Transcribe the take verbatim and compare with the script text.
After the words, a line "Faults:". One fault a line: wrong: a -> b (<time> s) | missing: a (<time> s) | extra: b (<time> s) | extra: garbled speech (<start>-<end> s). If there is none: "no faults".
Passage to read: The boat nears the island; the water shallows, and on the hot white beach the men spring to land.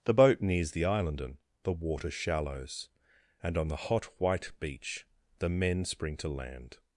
The boat nears the island; and the water shallows, and on the hot white beach the men spring to land.
Faults:
extra: and (1.2 s)